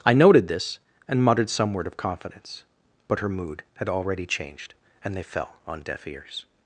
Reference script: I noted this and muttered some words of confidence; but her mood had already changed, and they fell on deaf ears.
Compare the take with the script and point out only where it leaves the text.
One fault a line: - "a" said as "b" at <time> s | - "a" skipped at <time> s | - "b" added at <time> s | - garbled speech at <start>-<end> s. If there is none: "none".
- "words" said as "word" at 1.7 s